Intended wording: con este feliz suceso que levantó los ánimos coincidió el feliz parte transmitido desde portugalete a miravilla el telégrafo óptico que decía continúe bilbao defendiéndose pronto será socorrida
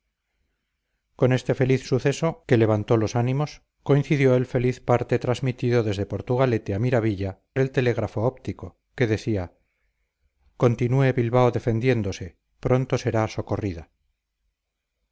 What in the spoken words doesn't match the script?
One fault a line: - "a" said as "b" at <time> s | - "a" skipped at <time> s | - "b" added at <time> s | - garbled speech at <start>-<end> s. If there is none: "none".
none